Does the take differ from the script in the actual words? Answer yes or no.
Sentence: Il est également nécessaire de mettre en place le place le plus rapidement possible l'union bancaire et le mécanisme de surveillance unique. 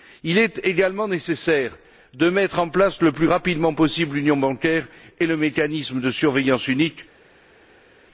yes